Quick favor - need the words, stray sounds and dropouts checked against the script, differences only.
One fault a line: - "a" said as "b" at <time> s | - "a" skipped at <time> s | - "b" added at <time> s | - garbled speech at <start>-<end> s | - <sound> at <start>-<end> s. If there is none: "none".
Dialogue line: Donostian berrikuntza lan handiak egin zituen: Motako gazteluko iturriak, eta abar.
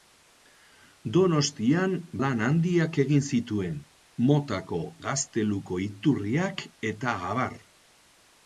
- "berrikuntza" skipped at 1.9 s